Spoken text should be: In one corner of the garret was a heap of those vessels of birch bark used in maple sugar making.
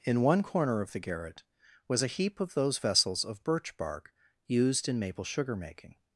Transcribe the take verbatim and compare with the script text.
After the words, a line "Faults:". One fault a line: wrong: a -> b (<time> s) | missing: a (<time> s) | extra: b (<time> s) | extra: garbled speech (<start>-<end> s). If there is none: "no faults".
In one corner of the garret was a heap of those vessels of birch bark used in maple sugar making.
Faults:
no faults